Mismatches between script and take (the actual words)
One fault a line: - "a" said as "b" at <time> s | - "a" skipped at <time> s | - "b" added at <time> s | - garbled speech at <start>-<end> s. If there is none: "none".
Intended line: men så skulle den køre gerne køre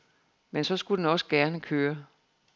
- "køre" said as "også" at 1.1 s